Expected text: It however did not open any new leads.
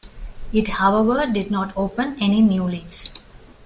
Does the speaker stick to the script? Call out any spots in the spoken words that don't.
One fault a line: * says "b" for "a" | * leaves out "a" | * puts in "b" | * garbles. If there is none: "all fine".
all fine